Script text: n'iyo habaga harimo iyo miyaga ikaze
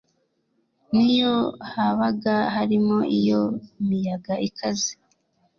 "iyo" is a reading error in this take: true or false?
false